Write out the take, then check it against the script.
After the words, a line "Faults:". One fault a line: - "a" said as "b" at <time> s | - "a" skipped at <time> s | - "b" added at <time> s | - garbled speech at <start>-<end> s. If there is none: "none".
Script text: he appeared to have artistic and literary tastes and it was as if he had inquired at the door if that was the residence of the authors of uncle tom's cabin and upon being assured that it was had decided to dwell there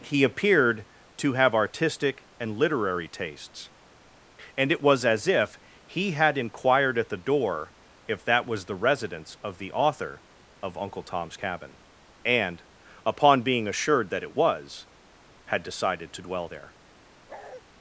he appeared to have artistic and literary tastes and it was as if he had inquired at the door if that was the residence of the author of uncle tom's cabin and upon being assured that it was had decided to dwell there
Faults:
- "authors" said as "author" at 9.7 s